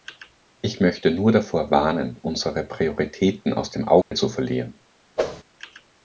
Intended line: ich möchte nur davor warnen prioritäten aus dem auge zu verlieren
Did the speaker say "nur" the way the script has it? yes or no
yes